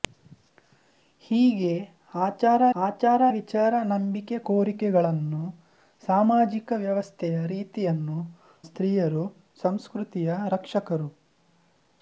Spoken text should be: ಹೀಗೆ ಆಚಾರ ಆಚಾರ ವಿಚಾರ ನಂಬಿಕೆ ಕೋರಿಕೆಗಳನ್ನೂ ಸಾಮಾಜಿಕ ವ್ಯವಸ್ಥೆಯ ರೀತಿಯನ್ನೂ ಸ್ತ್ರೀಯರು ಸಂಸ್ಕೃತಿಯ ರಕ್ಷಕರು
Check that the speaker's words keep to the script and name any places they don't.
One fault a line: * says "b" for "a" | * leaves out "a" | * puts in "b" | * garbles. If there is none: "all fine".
all fine